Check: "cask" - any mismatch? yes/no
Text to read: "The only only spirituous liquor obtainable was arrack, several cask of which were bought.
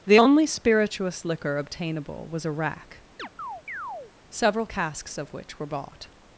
yes